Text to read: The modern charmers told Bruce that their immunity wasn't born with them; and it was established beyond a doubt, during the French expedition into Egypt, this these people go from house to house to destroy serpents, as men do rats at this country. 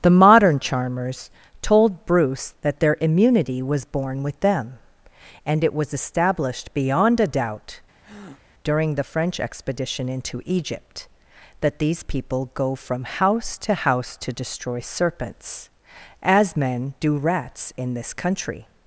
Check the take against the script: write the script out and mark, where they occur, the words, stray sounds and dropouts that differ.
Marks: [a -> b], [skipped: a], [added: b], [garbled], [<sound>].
The modern charmers told Bruce that their immunity [wasn't -> was] born with them; and it was established beyond a doubt, [breath] during the French expedition into Egypt, [this -> that] these people go from house to house to destroy serpents, as men do rats [at -> in] this country.